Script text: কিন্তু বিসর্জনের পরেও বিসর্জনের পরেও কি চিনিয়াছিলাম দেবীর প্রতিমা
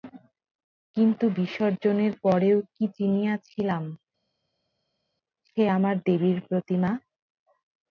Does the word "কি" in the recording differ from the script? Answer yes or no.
yes